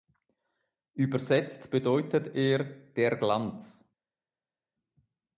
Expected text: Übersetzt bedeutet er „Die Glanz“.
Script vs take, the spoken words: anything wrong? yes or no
yes